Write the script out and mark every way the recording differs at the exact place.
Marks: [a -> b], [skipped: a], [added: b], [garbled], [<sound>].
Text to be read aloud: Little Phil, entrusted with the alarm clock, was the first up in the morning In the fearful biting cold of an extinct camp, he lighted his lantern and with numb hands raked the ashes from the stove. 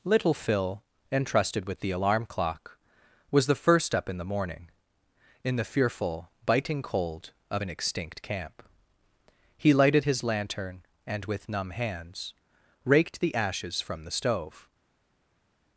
Little Phil, entrusted with the alarm clock, was the first up in the morning In the fearful biting cold of an extinct camp, he lighted his lantern and with numb hands raked the ashes from the stove.